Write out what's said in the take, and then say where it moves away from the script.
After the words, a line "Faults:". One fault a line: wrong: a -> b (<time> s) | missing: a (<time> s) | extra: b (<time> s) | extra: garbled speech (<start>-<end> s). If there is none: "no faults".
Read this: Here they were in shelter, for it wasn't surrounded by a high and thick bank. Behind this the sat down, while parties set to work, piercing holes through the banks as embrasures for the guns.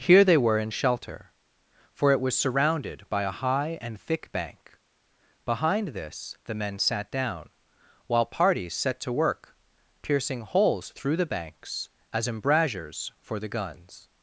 Here they were in shelter, for it was surrounded by a high and thick bank. Behind this the men sat down, while parties set to work, piercing holes through the banks as embrasures for the guns.
Faults:
wrong: wasn't -> was (2.2 s)
extra: men (6.5 s)